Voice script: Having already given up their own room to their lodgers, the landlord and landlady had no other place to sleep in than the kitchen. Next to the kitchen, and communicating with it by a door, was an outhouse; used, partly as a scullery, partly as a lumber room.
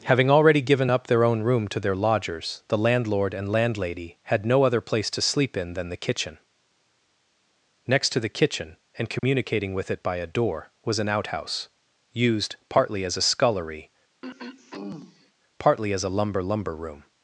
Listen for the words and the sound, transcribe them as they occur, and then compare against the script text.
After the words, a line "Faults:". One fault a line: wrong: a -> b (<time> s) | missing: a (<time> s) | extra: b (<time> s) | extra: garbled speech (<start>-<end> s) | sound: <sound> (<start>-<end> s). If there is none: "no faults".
Having already given up their own room to their lodgers, the landlord and landlady had no other place to sleep in than the kitchen. Next to the kitchen, and communicating with it by a door, was an outhouse; used, partly as a scullery, partly as a lumber lumber room.
Faults:
sound: dropout (9.2-9.2 s)
sound: throat clearing (14.2-15.3 s)
extra: lumber (16.4 s)